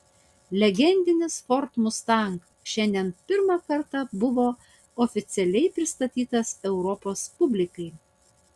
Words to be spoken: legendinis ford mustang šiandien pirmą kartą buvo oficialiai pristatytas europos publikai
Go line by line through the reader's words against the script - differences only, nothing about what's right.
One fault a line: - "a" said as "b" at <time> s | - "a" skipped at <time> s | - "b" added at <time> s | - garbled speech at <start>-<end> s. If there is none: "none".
none